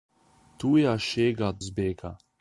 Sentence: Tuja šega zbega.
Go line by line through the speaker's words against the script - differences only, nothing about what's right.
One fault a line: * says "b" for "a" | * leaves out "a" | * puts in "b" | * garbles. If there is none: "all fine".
all fine